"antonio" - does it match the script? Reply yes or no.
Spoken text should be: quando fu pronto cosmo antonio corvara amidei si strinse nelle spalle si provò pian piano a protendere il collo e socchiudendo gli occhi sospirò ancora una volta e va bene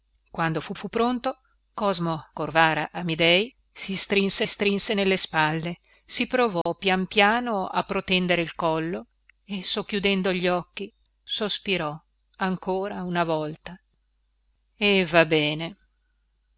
no